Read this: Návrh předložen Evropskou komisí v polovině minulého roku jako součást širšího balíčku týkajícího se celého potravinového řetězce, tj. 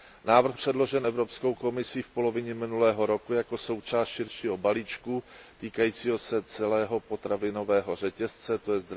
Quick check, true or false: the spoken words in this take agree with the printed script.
true